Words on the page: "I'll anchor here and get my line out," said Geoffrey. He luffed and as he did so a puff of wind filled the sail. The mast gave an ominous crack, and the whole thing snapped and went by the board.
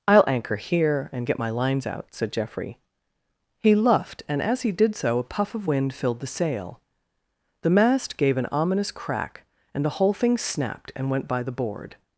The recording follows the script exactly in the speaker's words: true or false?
false